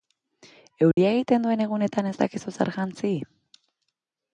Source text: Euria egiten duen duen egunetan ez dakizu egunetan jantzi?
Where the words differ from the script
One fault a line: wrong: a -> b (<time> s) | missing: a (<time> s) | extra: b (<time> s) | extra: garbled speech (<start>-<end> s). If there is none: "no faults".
missing: duen (1.6 s)
wrong: egunetan -> zer (2.6 s)